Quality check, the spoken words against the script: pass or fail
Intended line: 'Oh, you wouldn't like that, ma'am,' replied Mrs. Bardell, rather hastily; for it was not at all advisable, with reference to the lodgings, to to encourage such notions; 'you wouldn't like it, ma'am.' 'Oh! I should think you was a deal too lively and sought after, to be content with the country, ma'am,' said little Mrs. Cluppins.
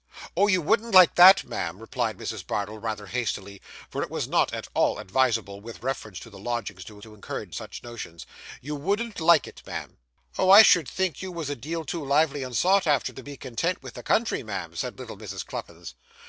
pass